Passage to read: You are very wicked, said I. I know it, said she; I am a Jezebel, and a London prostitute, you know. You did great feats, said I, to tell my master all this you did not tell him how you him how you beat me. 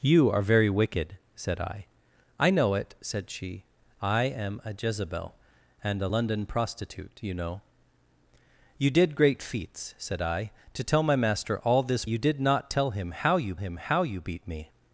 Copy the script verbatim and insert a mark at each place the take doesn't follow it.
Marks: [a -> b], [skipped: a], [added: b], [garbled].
You are very wicked, said I. I know it, said she; I am a Jezebel, and a London prostitute, you know. You did great feats, said I, to tell my master all this you did not tell him how you him how you beat me.